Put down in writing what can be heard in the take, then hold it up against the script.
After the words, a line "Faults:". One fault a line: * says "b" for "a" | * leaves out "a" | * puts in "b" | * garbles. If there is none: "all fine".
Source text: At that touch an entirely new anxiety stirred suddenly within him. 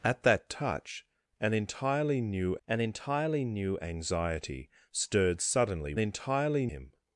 At that touch an entirely new an entirely new anxiety stirred suddenly entirely him.
Faults:
* puts in "an entirely new"
* says "entirely" for "within"